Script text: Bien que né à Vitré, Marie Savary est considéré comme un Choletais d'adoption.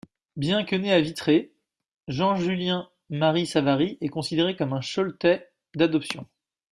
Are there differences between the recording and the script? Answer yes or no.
yes